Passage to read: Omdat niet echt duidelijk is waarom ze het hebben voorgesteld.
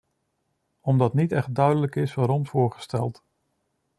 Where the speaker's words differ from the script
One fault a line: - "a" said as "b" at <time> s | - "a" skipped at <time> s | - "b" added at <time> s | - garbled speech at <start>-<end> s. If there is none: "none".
- "ze het hebben" skipped at 2.5 s